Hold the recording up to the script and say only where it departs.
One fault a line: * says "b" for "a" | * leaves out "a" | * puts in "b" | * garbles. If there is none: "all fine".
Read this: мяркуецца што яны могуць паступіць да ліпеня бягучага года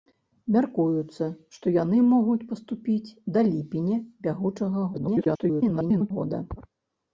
* garbles